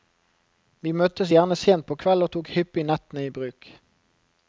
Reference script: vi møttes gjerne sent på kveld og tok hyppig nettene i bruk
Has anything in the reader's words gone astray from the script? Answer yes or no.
no